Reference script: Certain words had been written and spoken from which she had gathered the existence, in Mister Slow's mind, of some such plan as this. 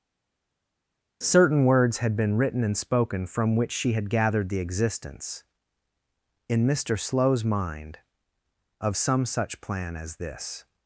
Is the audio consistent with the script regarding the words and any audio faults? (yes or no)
yes